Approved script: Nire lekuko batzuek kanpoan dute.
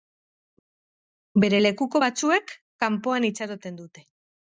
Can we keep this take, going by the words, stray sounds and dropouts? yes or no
no